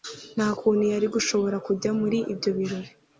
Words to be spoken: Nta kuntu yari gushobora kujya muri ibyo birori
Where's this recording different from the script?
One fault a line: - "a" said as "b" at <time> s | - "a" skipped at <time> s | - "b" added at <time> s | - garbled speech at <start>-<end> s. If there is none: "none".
none